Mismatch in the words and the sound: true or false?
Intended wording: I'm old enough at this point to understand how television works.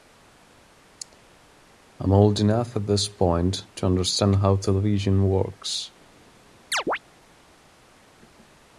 true